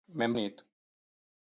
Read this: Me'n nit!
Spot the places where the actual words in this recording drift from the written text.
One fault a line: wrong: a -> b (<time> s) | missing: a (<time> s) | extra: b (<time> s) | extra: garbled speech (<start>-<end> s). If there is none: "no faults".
no faults